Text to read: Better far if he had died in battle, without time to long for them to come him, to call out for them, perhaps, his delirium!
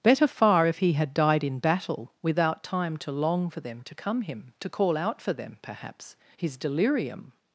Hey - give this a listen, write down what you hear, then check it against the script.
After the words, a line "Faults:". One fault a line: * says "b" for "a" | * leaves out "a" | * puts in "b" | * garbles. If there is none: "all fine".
Better far if he had died in battle, without time to long for them to come him, to call out for them, perhaps, his delirium!
Faults:
all fine